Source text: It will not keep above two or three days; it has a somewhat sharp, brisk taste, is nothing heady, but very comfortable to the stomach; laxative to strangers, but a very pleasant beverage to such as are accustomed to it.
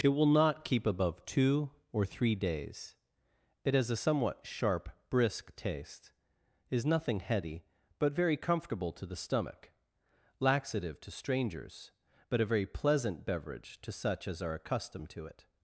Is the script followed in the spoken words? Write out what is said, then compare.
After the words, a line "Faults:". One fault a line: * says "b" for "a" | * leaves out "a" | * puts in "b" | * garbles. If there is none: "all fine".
It will not keep above two or three days; it has a somewhat sharp, brisk taste, is nothing heady, but very comfortable to the stomach; laxative to strangers, but a very pleasant beverage to such as are accustomed to it.
Faults:
all fine